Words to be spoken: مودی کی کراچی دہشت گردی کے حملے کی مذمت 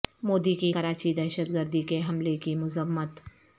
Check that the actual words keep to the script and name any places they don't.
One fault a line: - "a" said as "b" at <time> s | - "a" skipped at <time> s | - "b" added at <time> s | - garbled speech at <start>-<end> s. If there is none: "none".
none